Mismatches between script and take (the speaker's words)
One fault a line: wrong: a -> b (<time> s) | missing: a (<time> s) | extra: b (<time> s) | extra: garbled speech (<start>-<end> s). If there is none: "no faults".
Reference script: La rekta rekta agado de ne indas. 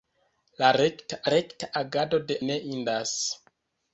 no faults